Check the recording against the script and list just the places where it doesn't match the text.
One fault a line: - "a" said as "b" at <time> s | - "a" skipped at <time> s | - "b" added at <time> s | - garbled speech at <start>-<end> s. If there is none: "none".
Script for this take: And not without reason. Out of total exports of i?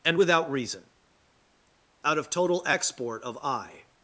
- "not" skipped at 0.2 s
- "exports" said as "export" at 2.7 s